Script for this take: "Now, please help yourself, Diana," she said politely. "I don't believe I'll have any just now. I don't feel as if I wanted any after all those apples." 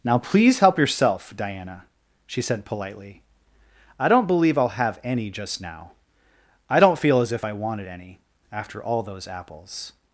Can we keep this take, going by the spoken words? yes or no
yes